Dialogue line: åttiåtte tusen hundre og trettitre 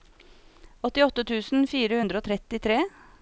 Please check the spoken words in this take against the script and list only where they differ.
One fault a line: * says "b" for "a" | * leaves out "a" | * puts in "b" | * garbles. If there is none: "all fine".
* puts in "fire"